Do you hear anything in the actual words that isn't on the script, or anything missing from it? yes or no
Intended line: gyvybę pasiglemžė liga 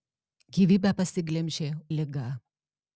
no